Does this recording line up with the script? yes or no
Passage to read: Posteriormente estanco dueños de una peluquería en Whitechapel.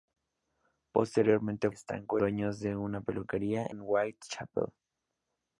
yes